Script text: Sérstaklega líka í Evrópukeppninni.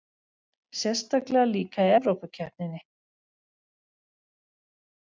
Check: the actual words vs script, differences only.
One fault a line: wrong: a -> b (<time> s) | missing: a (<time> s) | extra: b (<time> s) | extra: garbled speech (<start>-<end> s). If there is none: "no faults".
no faults